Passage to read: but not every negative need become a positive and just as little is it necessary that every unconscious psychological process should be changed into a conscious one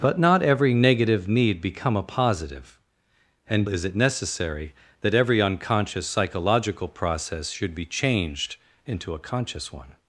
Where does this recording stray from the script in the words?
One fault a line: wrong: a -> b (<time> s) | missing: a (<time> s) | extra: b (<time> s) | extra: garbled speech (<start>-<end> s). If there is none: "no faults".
missing: just as little (3.7 s)